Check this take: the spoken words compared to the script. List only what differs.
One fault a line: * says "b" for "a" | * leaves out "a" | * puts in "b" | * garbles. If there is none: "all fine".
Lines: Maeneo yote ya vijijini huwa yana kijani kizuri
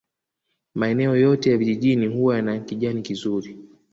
all fine